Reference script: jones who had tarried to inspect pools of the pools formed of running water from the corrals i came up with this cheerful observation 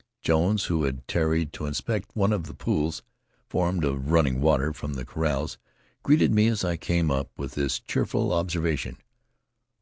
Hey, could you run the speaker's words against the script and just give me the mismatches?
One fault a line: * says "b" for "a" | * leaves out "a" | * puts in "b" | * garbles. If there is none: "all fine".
* says "one" for "pools"
* puts in "greeted me as"